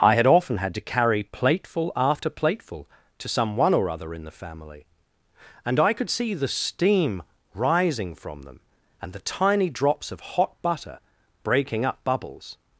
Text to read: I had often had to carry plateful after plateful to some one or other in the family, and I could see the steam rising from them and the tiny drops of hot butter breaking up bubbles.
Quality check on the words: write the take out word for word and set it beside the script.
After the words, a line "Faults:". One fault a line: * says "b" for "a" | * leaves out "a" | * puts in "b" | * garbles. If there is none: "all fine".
I had often had to carry plateful after plateful to some one or other in the family, and I could see the steam rising from them and the tiny drops of hot butter breaking up bubbles.
Faults:
all fine